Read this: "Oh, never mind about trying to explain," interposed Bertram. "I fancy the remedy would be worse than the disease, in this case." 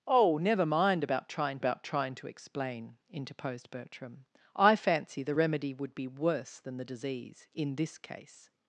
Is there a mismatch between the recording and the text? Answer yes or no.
yes